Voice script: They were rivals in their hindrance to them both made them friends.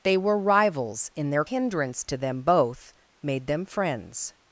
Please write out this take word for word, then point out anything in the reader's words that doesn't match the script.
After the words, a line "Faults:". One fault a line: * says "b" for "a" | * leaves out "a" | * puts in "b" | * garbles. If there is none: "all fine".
They were rivals in their hindrance to them both made them friends.
Faults:
all fine